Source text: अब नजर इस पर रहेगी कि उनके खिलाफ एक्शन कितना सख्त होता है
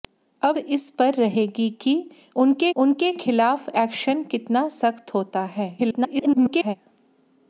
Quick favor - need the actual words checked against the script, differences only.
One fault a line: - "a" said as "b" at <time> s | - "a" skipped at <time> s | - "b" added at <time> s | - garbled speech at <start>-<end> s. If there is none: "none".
- "नजर" skipped at 0.6 s
- "उनके" added at 2.8 s
- garbled speech at 5.8-6.8 s